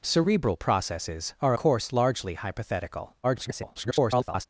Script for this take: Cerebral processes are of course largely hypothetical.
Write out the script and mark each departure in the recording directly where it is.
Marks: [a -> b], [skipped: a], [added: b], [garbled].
Cerebral processes are [skipped: of] course largely hypothetical. [garbled]